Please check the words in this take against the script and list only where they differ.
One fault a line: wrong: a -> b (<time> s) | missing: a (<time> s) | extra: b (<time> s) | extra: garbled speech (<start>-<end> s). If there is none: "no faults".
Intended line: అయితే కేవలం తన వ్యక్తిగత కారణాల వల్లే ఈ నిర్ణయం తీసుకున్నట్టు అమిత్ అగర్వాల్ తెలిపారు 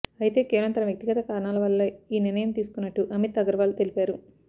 no faults